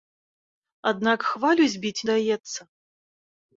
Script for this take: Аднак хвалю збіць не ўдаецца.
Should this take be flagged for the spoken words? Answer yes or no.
yes